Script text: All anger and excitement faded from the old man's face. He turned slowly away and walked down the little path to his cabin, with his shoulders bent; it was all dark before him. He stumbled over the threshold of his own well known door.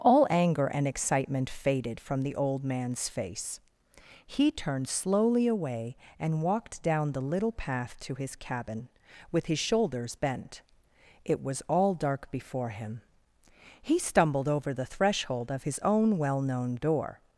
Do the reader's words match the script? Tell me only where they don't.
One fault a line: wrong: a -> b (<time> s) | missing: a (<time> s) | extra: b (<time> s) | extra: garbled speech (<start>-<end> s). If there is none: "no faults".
no faults